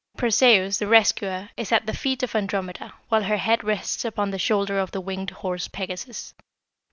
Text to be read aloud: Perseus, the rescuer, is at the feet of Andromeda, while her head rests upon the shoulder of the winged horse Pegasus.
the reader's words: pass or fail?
pass